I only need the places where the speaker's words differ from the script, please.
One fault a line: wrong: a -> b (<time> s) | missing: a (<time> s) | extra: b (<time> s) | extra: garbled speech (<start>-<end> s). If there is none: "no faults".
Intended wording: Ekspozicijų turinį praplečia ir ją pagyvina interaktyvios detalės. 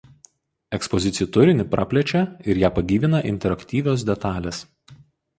no faults